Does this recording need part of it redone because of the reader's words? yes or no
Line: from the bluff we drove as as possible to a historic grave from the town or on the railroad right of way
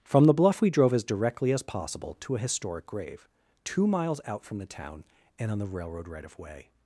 yes